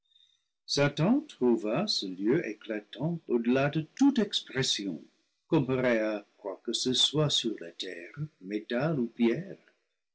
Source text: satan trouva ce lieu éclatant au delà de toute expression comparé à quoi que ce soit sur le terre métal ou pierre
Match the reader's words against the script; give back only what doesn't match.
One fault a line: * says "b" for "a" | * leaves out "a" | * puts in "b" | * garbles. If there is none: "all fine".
* says "la" for "le"